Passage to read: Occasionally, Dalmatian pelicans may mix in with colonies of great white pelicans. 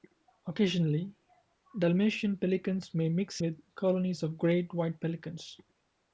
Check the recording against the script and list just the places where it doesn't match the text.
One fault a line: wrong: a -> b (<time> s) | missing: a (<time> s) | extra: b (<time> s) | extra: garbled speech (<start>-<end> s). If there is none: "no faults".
missing: in (3.4 s)